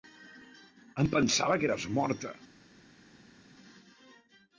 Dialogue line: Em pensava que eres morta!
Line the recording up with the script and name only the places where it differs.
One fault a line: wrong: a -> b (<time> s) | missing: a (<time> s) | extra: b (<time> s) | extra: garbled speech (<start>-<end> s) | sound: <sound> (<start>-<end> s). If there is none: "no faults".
no faults